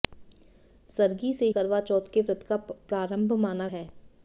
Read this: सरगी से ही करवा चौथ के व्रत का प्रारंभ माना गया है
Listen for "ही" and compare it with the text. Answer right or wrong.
wrong